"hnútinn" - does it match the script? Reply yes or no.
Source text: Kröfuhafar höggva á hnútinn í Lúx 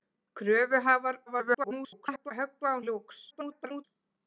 no